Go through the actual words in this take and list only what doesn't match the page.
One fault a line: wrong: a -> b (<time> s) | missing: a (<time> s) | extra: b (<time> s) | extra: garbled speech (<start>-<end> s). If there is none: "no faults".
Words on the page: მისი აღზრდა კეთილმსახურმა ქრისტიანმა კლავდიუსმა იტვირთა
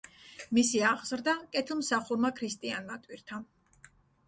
missing: კლავდიუსმა (3.0 s)